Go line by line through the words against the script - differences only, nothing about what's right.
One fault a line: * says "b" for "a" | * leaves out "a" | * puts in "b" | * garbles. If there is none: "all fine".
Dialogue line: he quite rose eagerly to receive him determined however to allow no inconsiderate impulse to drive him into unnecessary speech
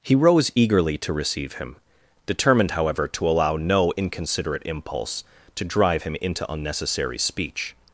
* leaves out "quite"